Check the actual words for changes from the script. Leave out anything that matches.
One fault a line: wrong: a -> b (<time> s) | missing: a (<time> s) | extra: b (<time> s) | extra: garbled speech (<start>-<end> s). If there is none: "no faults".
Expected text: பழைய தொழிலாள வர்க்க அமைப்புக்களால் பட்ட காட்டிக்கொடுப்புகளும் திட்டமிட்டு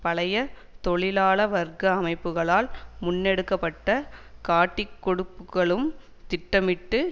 extra: முன்னெடுக்க (3.0 s)